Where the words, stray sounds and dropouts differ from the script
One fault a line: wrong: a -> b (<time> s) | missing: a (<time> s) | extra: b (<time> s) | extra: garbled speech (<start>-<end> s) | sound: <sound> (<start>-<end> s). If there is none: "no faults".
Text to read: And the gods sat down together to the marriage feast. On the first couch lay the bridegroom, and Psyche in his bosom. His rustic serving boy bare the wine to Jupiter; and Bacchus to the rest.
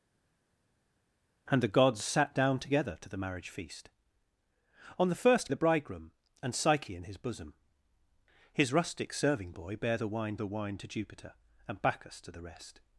missing: couch lay (5.5 s)
extra: the wine (10.4 s)